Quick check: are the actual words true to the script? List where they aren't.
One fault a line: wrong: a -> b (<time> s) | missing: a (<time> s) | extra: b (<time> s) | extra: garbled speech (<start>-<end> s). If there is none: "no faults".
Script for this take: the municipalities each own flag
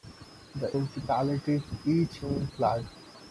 no faults